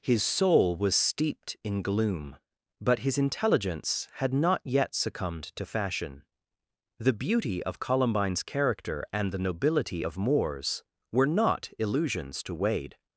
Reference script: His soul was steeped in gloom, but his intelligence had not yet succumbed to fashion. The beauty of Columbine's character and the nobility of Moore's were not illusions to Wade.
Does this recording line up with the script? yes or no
yes